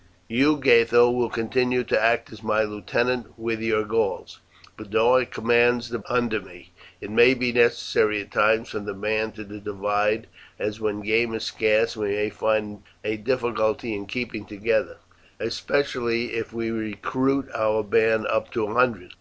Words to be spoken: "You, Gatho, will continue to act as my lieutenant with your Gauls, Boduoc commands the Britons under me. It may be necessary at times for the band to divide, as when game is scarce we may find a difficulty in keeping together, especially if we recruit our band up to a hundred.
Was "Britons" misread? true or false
true